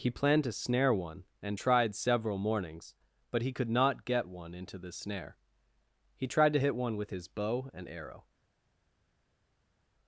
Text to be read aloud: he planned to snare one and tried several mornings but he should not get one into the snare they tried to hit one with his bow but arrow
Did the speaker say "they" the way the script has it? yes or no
no